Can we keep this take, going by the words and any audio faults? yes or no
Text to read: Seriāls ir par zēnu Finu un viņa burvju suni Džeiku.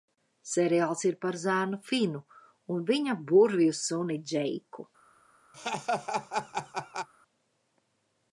no